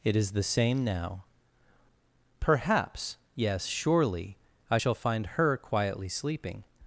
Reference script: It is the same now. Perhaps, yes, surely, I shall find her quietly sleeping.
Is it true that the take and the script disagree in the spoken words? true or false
false